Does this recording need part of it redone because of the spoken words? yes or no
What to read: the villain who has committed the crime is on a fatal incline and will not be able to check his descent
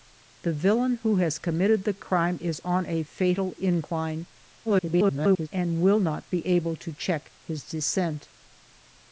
yes